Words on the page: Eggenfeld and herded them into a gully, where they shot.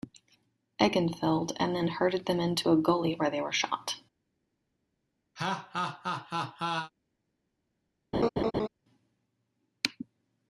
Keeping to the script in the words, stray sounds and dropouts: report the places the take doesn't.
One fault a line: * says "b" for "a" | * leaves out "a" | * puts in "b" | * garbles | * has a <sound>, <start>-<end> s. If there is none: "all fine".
* puts in "then"
* puts in "were"
* has a laugh, 5.4-6.9 s
* has a laugh, 8.1-8.7 s